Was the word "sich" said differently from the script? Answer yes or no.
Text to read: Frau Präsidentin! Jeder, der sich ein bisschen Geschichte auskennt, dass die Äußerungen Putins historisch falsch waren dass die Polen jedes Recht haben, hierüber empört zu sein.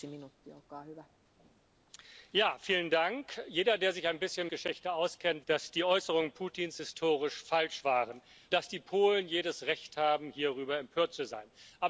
no